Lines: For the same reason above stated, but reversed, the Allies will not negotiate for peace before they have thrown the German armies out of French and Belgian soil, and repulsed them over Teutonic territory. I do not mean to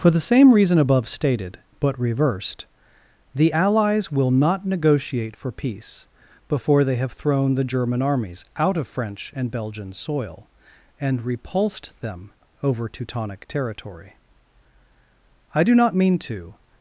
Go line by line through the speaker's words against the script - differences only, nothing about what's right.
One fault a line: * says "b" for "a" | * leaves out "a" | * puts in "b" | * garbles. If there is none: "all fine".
all fine